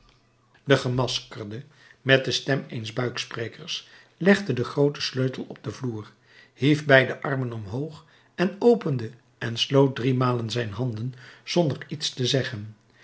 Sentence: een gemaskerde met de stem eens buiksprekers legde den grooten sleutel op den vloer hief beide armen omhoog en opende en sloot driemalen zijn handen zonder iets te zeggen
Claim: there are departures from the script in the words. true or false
true